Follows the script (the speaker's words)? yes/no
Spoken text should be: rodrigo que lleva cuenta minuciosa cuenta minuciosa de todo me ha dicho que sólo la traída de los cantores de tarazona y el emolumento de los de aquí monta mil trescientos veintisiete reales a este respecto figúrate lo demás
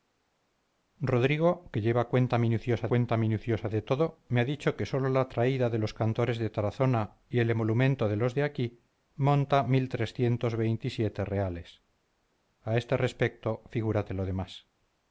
yes